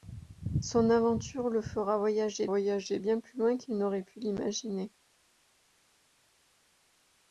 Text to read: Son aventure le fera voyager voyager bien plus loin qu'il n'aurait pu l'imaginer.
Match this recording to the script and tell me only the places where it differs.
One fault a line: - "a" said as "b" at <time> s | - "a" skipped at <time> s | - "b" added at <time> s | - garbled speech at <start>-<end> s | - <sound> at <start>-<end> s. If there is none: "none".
none